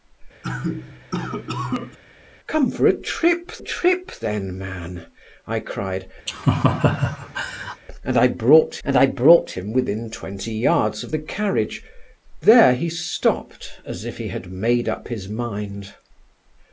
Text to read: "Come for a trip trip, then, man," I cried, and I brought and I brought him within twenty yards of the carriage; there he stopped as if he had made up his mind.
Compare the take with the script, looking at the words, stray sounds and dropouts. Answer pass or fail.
fail